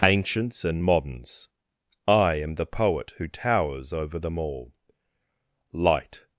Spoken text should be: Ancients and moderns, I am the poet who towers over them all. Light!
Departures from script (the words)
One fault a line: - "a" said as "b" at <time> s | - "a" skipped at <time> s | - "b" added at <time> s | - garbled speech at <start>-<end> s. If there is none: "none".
none